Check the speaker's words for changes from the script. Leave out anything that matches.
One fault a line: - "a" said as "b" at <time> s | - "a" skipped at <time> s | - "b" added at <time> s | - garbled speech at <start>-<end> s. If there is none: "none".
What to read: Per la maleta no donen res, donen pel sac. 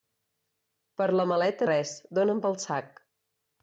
- "no donen" skipped at 1.7 s